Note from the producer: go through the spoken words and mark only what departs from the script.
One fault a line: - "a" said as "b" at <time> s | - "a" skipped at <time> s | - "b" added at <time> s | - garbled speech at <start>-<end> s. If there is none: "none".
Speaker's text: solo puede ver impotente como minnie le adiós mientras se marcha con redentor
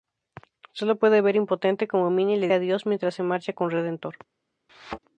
none